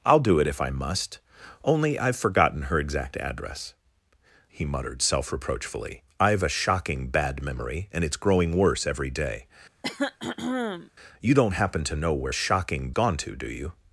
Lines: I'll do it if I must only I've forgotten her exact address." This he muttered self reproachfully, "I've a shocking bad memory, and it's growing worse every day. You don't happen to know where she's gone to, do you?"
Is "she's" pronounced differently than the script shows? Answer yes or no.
yes